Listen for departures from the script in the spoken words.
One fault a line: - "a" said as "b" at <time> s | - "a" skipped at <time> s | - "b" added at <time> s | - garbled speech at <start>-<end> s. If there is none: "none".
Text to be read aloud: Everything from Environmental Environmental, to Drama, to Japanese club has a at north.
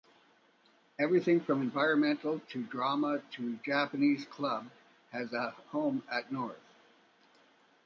- "Environmental" skipped at 2.4 s
- "home" added at 5.5 s